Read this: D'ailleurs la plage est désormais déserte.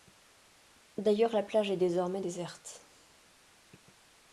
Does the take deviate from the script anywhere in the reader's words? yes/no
no